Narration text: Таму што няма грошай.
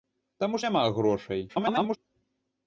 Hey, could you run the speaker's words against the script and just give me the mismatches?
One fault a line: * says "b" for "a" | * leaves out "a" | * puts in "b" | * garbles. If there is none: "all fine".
* leaves out "што"
* garbles